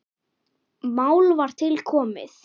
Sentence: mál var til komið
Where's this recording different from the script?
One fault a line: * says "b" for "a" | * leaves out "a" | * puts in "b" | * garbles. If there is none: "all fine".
all fine